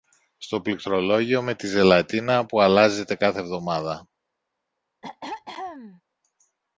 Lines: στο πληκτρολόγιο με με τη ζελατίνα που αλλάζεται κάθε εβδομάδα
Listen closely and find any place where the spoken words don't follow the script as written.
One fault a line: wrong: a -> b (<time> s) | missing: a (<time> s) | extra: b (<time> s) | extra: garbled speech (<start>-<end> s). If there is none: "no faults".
missing: με (1.6 s)